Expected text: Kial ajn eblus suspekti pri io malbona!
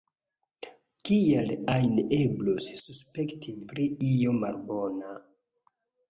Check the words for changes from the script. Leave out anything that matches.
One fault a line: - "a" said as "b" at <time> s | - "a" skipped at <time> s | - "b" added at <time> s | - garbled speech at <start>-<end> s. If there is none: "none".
none